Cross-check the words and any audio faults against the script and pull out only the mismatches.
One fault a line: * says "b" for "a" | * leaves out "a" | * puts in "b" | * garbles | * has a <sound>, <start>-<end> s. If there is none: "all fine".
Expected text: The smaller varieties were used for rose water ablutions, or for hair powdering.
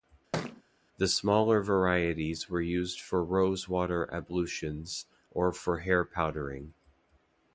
* has a thud, 0.3-0.6 s